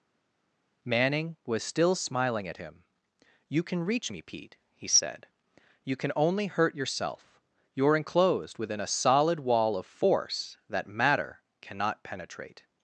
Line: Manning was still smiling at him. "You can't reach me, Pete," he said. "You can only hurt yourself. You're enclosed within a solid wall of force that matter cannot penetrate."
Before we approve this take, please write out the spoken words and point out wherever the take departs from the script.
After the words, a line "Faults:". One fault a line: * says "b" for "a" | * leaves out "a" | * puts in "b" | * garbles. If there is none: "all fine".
Manning was still smiling at him. "You can reach me, Pete," he said. "You can only hurt yourself. You're enclosed within a solid wall of force that matter cannot penetrate."
Faults:
* says "can" for "can't"